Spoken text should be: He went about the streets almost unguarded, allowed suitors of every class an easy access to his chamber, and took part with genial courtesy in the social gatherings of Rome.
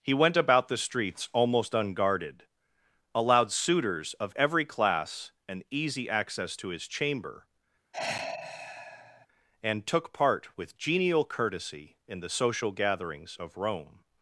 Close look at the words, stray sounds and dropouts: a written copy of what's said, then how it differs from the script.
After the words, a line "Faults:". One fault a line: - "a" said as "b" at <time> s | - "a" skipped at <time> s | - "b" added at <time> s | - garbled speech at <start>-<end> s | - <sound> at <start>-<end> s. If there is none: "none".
He went about the streets almost unguarded, allowed suitors of every class an easy access to his chamber, and took part with genial courtesy in the social gatherings of Rome.
Faults:
- sigh at 7.9-9.3 s